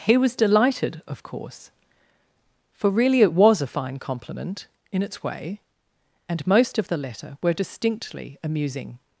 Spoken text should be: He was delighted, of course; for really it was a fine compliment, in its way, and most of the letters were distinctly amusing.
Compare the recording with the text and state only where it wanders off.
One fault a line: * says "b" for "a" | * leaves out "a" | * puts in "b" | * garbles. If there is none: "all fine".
* says "letter" for "letters"